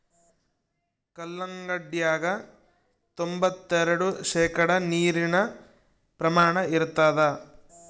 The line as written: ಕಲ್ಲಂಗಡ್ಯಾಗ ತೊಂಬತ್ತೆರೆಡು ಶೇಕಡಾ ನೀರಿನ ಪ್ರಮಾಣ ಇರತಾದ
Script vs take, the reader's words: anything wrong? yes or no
no